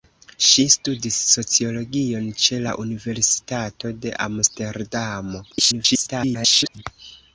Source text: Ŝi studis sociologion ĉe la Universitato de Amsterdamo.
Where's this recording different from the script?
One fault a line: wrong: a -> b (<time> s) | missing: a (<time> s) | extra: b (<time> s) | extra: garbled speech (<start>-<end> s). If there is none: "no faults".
extra: garbled speech (5.5-6.8 s)